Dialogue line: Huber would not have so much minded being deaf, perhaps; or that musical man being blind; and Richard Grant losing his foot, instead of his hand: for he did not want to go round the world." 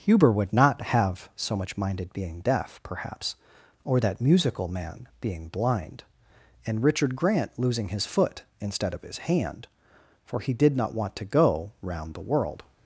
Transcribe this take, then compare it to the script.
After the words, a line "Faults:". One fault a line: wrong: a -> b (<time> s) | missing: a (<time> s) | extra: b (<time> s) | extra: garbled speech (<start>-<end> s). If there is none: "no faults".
Huber would not have so much minded being deaf, perhaps; or that musical man being blind; and Richard Grant losing his foot, instead of his hand: for he did not want to go round the world."
Faults:
no faults